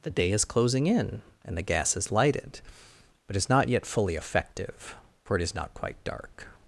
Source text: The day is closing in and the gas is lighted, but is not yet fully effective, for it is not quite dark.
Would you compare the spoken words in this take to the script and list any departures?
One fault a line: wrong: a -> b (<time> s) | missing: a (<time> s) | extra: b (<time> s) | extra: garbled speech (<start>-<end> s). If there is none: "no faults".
no faults